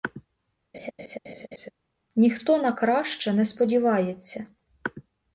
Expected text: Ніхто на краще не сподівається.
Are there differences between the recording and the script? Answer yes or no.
no